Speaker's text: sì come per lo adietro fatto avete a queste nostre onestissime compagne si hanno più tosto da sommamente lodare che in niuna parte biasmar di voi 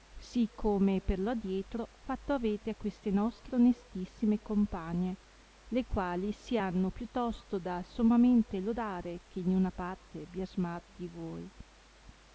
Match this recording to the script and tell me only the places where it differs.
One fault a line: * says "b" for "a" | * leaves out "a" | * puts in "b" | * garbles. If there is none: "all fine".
* puts in "le quali"